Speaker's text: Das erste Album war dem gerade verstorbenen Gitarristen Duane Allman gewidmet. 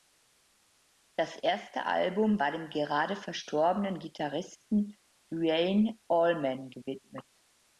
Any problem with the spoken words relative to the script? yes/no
no